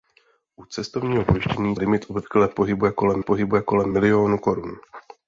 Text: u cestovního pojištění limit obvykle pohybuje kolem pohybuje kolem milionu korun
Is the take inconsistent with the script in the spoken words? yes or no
no